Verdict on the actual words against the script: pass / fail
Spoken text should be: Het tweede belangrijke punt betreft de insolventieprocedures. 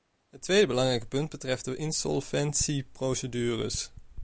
pass